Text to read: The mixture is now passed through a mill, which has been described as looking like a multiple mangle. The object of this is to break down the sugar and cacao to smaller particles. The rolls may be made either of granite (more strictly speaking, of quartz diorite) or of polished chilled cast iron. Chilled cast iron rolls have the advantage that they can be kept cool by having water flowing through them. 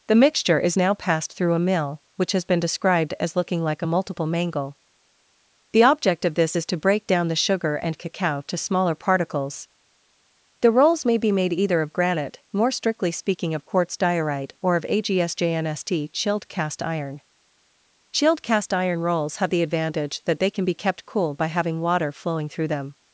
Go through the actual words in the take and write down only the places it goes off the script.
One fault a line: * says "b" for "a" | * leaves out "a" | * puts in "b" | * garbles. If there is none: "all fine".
* says "agsjnst" for "polished"